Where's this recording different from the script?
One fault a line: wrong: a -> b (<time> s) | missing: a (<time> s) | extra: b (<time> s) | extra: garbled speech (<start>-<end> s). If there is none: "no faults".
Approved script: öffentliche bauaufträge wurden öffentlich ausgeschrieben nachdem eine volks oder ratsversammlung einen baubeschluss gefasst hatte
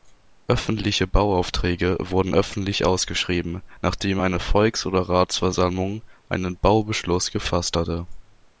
no faults